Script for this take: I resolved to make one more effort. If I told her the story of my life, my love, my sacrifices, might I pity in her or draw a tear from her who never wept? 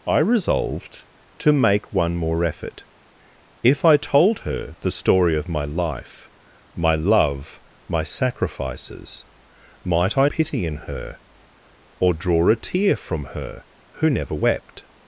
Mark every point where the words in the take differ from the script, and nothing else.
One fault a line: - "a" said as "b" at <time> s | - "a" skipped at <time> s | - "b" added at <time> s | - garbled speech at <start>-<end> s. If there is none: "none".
none